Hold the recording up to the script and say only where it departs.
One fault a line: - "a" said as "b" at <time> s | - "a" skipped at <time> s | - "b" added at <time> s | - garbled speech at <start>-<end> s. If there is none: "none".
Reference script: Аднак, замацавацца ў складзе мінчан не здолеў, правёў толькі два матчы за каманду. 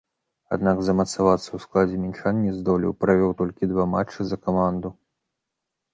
none